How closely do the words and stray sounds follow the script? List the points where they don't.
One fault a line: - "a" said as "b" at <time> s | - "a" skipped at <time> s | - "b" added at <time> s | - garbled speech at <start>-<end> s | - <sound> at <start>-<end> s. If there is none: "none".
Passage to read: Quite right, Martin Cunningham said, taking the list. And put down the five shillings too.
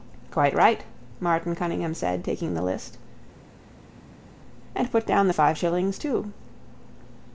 none